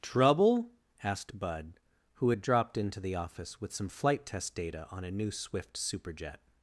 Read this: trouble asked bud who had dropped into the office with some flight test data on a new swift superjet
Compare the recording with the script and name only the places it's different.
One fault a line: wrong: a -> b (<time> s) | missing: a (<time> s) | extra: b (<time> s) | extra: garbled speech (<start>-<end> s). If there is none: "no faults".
no faults